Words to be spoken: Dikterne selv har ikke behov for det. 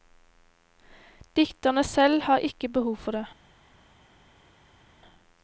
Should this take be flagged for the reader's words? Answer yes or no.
no